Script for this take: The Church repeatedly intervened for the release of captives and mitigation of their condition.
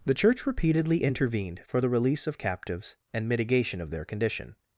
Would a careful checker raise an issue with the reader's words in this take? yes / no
no